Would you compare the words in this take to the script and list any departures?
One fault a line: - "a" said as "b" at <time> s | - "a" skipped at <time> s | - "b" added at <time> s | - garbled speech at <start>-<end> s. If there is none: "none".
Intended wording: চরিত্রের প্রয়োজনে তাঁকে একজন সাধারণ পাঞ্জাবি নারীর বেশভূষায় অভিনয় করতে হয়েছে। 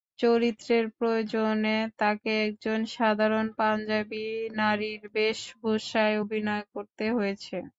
none